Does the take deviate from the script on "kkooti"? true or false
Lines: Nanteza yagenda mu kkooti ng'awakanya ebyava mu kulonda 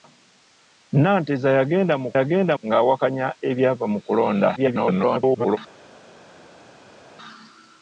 true